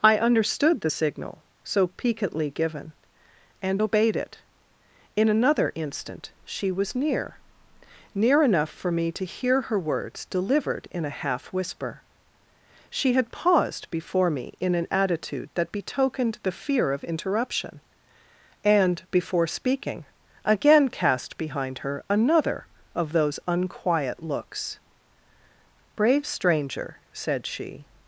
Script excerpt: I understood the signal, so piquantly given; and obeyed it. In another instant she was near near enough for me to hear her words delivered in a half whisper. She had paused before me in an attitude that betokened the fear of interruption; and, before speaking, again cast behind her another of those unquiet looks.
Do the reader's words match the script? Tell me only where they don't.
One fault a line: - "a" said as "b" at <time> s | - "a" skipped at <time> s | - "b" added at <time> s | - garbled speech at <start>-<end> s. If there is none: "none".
- "Brave stranger said she" added at 26.0 s